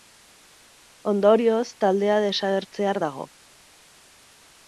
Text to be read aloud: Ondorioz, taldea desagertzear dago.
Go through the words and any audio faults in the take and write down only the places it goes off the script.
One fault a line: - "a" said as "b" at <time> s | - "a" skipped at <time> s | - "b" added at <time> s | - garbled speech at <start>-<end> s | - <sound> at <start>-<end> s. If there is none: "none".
none